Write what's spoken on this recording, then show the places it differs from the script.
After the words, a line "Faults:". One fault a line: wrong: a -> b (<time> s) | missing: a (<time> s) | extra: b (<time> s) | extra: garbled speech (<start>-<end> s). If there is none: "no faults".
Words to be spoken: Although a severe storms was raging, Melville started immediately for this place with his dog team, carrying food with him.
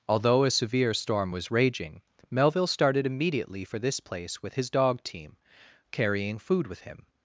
Although a severe storm was raging, Melville started immediately for this place with his dog team, carrying food with him.
Faults:
wrong: storms -> storm (0.9 s)